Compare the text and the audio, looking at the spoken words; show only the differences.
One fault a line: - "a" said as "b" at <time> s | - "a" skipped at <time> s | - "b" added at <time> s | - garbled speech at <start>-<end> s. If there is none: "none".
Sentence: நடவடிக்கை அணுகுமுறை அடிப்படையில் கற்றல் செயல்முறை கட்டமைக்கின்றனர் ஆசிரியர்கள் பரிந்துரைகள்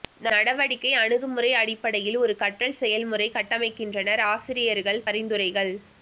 - "ஒரு" added at 2.2 s